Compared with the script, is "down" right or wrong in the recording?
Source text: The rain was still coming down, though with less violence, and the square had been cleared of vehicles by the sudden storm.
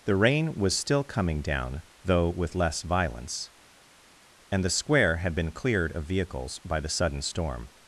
right